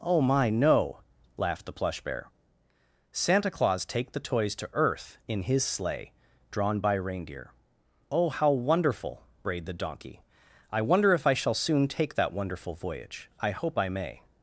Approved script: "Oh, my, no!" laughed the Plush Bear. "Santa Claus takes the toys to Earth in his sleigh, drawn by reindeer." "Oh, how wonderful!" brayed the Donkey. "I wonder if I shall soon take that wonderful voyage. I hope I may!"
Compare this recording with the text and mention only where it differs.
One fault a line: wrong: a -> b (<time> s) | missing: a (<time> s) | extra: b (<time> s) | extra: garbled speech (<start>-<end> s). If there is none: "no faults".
wrong: takes -> take (3.9 s)